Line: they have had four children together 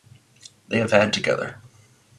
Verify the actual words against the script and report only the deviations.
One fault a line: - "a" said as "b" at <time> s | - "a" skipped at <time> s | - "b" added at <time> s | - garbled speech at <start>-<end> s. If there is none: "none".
- "four children" skipped at 1.1 s